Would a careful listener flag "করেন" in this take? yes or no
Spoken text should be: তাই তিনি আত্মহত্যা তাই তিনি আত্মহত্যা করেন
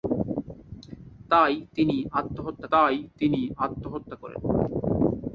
no